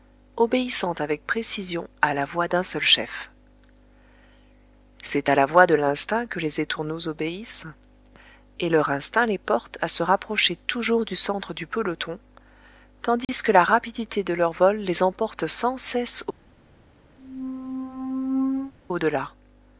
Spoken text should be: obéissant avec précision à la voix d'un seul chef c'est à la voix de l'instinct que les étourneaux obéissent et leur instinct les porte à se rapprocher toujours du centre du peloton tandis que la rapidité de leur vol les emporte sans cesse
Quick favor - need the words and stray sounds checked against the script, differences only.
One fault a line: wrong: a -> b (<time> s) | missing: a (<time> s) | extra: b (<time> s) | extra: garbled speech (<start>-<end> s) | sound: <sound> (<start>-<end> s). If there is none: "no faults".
sound: dropout (13.2-13.3 s)
sound: squeak (17.2-18.7 s)